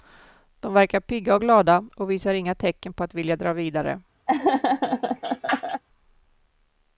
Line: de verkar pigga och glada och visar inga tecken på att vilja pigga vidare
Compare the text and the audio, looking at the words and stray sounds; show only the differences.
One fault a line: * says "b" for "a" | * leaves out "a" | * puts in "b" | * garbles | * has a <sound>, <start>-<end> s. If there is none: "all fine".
* says "dra" for "pigga"
* has a laugh, 4.3-5.8 s